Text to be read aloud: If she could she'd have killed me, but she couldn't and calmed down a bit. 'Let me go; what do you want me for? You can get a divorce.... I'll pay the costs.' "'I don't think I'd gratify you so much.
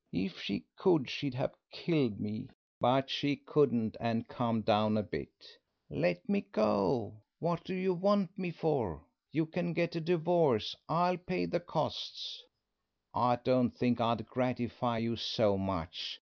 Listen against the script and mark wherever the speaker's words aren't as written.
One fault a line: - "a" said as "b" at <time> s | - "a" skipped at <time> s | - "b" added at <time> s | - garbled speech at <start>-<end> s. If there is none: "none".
none